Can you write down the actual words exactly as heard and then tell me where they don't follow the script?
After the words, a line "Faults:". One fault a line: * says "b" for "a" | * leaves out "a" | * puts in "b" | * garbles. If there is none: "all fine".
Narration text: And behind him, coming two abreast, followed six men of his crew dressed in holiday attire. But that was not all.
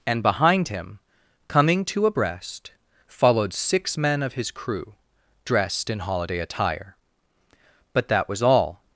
And behind him, coming two abreast, followed six men of his crew dressed in holiday attire. But that was all.
Faults:
* leaves out "not"